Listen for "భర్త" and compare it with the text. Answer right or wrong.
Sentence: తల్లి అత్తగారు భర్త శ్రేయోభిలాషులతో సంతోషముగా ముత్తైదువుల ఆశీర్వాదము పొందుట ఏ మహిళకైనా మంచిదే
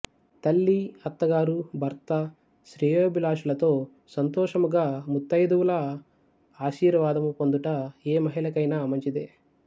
right